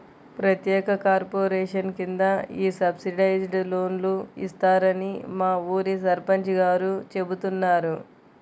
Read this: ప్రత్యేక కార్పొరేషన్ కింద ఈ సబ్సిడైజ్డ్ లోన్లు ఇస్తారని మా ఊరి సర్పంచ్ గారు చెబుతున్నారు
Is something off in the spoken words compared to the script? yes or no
no